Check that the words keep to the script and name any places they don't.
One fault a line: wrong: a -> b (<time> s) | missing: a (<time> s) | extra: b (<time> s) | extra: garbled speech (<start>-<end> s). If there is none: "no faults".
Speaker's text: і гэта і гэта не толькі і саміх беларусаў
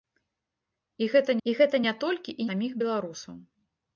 no faults